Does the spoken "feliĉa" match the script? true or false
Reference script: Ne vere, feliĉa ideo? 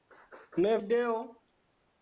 false